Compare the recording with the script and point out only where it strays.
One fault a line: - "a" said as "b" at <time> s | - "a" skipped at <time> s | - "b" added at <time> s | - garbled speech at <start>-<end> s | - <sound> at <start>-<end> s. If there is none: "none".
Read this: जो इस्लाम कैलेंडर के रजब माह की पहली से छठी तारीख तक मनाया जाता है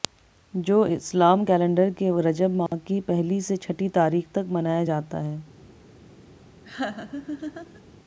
- dropout at 2.7-2.7 s
- laugh at 6.6-7.8 s